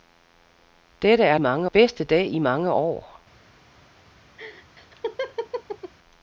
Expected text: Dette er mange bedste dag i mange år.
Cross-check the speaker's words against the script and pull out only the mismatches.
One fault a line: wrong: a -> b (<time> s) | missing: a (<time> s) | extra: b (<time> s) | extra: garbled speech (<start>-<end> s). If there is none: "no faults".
no faults